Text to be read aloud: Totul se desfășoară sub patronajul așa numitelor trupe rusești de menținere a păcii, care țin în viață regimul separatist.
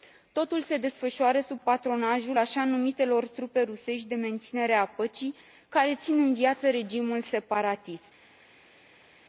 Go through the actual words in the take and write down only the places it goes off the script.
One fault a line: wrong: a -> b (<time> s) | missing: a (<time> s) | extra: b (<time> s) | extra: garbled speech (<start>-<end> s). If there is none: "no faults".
no faults